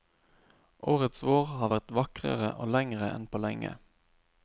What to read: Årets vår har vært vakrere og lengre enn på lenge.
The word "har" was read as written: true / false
true